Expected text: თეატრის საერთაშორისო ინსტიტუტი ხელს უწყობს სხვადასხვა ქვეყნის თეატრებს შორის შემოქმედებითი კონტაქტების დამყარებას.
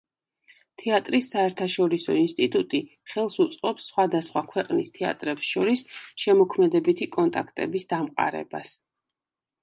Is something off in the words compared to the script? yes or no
no